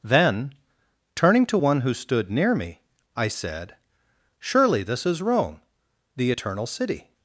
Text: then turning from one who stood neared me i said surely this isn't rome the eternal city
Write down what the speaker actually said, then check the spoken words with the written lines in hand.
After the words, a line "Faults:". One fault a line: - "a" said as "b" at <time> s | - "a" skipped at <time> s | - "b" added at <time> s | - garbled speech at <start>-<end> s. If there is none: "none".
then turning to one who stood near me i said surely this is rome the eternal city
Faults:
- "from" said as "to" at 1.5 s
- "neared" said as "near" at 2.3 s
- "isn't" said as "is" at 5.0 s